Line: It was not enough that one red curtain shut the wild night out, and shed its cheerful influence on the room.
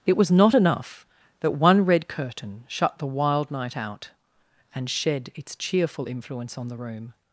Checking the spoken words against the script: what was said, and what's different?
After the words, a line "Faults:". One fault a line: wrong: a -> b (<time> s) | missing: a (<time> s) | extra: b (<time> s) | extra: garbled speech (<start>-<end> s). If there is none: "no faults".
It was not enough that one red curtain shut the wild night out, and shed its cheerful influence on the room.
Faults:
no faults